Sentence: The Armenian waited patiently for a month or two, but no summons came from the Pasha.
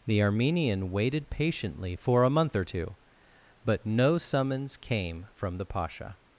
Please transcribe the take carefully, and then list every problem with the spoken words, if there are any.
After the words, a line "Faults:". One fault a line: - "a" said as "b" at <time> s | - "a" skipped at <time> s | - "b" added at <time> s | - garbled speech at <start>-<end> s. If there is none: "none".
The Armenian waited patiently for a month or two, but no summons came from the Pasha.
Faults:
none